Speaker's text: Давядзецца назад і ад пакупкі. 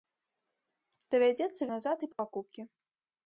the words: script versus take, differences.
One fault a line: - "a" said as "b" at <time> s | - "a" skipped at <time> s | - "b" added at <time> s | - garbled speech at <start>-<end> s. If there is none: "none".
none